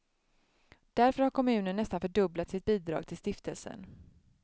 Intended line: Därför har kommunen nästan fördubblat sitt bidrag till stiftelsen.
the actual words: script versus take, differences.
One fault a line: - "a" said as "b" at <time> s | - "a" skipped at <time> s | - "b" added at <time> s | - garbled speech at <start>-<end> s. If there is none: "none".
none